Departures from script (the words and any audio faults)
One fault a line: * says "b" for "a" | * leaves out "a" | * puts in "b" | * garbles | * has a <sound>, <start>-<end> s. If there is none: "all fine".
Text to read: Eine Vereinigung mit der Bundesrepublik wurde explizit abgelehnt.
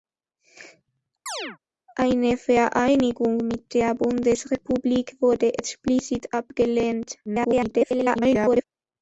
* has a chirp, 1.3-1.6 s
* garbles